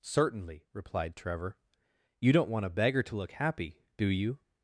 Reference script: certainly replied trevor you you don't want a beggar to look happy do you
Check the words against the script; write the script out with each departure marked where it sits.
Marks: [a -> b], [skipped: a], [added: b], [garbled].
certainly replied trevor you [skipped: you] don't want a beggar to look happy do you